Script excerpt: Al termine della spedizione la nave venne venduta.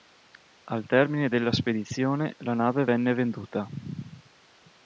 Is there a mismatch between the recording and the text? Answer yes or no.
no